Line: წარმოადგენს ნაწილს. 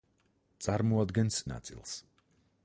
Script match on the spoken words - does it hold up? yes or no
yes